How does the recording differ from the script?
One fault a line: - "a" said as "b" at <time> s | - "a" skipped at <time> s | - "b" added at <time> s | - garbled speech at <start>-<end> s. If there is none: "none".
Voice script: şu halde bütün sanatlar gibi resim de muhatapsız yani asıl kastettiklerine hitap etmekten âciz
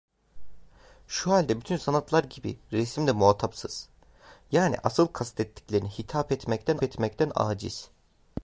- "etmekten" added at 6.8 s